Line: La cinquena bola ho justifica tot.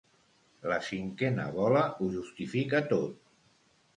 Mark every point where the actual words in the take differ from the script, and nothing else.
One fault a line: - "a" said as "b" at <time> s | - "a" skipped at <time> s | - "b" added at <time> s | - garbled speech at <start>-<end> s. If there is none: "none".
none